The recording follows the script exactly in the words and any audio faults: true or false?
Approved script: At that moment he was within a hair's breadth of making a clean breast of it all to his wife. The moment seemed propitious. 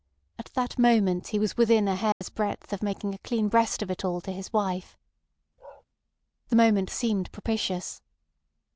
false